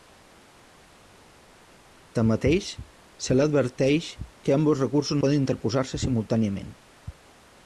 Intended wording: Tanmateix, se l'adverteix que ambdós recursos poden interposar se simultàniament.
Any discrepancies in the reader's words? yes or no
no